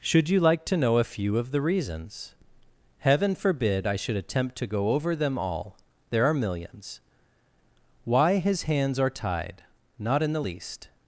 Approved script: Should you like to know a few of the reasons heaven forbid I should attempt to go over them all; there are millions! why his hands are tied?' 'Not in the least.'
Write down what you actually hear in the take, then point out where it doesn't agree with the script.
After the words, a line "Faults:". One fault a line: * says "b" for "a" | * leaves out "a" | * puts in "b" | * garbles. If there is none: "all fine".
Should you like to know a few of the reasons heaven forbid I should attempt to go over them all; there are millions! why his hands are tied?' 'Not in the least.'
Faults:
all fine